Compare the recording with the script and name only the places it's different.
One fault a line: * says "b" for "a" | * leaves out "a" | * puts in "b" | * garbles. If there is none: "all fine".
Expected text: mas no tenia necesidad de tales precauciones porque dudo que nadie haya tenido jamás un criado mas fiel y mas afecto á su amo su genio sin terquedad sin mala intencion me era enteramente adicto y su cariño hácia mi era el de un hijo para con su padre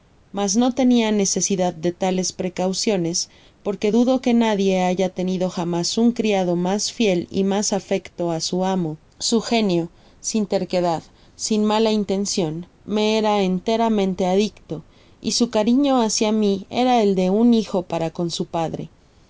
all fine